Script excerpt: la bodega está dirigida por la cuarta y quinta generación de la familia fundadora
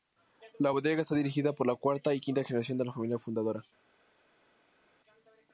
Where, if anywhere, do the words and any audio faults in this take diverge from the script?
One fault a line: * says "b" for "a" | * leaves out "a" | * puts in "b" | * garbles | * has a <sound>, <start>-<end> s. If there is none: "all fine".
all fine